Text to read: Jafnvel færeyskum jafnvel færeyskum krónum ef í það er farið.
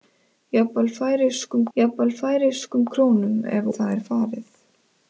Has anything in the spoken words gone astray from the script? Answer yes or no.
no